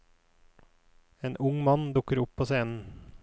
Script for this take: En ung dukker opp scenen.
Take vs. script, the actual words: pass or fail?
fail